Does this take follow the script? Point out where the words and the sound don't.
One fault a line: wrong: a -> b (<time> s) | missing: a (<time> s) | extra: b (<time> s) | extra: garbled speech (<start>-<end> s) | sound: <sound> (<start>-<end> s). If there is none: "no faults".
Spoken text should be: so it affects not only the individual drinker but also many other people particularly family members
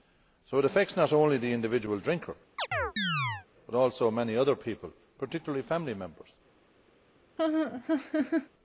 sound: chirp (2.6-3.5 s)
sound: laugh (7.4-8.5 s)